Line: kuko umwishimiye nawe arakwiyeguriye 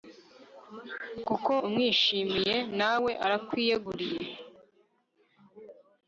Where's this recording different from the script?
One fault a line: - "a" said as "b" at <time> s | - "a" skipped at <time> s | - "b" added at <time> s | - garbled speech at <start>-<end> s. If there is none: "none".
none